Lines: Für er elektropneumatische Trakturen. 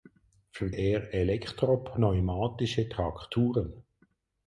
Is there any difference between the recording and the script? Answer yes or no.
no